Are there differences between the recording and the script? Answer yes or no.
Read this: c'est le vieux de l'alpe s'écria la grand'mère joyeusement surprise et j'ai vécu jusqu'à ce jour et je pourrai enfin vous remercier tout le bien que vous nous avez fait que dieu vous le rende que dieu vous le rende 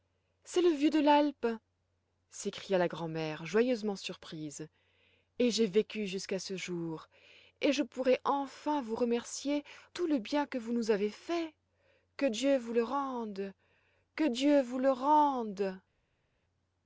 no